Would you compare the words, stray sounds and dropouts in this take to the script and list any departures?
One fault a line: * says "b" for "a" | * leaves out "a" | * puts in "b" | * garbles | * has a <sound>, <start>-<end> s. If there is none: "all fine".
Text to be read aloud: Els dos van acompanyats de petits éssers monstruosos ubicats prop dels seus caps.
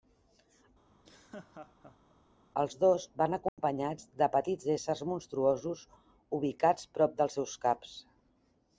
* has a laugh, 0.9-2.2 s
* has a dropout, 3.5-3.6 s